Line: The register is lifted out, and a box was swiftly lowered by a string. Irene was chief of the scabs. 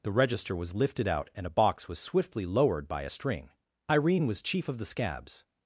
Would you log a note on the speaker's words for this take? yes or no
yes